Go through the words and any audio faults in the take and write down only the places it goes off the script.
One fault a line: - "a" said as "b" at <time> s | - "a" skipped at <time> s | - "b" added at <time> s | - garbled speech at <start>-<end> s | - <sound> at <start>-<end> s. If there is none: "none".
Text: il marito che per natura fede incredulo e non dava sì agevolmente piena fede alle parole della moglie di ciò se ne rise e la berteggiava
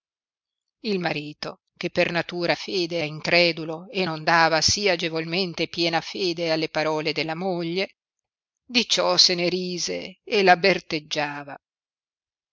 none